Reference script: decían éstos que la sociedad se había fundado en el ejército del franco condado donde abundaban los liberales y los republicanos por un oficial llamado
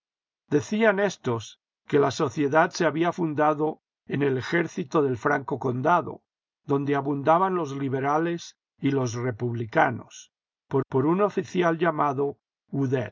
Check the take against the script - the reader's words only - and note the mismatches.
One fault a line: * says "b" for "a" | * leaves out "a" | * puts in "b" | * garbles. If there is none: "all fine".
* puts in "por"